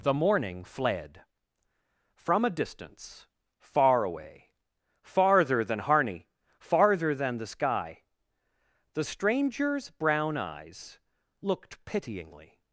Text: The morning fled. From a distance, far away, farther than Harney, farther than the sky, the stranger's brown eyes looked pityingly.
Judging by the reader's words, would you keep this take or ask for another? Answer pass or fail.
pass